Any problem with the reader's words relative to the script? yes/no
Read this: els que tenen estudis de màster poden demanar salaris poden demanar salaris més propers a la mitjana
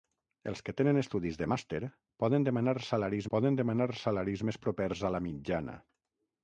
no